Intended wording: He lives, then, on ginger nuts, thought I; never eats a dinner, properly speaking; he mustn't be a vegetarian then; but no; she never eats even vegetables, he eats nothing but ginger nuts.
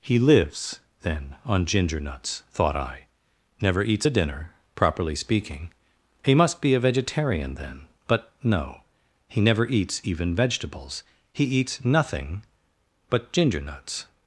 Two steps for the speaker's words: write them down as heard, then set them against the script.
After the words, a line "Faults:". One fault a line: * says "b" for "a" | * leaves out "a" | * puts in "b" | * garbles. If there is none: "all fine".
He lives, then, on ginger nuts, thought I; never eats a dinner, properly speaking; he must be a vegetarian then; but no; he never eats even vegetables, he eats nothing but ginger nuts.
Faults:
* says "must" for "mustn't"
* says "he" for "she"